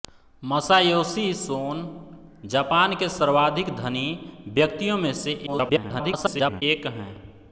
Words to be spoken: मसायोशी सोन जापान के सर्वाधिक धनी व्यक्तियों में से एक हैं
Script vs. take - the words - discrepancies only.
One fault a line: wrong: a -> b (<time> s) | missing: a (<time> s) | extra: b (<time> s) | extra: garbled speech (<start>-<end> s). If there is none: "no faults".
extra: garbled speech (5.5-6.6 s)